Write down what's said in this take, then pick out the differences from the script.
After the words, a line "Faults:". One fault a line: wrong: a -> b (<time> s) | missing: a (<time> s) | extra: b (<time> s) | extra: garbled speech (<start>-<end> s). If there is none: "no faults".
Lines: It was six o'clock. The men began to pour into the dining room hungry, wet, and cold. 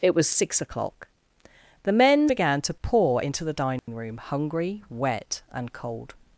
It was six o'clock. The men began to pour into the dining room hungry, wet, and cold.
Faults:
no faults